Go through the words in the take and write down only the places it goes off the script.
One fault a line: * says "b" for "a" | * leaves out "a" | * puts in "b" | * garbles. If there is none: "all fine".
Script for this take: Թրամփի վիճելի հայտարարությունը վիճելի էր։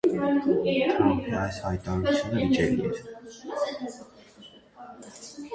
* says "այս" for "վիճելի"